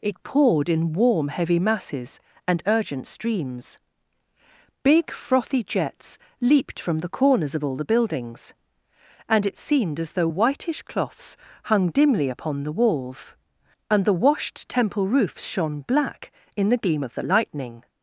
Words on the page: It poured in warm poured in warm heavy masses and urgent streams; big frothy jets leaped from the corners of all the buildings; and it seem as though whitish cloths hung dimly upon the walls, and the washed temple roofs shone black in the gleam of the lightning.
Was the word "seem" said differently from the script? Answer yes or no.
yes